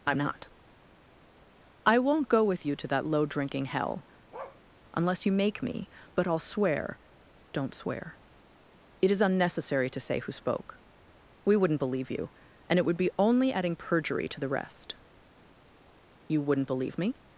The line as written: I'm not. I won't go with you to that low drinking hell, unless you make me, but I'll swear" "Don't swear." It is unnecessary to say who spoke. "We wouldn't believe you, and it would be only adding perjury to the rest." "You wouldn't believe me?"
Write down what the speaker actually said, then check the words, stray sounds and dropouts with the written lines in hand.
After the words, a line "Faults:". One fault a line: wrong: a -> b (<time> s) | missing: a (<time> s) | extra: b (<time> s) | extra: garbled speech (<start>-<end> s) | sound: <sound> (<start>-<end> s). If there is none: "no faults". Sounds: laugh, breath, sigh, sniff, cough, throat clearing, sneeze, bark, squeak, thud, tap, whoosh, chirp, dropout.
I'm not. I won't go with you to that low drinking hell, unless you make me, but I'll swear" "Don't swear." It is unnecessary to say who spoke. "We wouldn't believe you, and it would be only adding perjury to the rest." "You wouldn't believe me?"
Faults:
sound: bark (4.3-4.6 s)